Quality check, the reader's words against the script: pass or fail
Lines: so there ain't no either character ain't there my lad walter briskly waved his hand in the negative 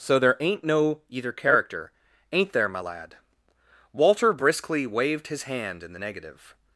pass